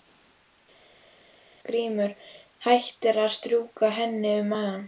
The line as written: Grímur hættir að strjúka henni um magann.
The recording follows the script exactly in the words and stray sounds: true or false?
true